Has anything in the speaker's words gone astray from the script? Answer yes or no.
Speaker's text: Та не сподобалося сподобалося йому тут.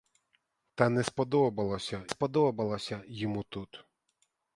no